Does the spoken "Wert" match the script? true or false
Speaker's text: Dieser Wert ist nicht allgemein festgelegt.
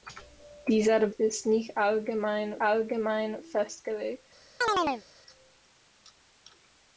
false